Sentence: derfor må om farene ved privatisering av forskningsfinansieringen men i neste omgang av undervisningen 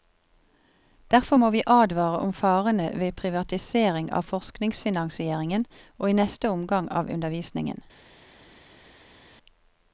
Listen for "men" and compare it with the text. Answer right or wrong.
wrong